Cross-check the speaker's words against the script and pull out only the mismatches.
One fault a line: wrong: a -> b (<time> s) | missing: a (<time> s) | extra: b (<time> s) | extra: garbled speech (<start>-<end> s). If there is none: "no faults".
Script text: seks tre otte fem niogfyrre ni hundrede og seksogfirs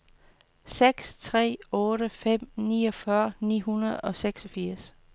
no faults